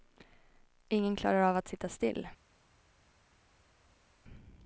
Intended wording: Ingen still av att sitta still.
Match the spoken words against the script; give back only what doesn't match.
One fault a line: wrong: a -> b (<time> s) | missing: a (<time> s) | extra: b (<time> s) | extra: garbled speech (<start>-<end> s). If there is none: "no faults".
wrong: still -> klarar (1.1 s)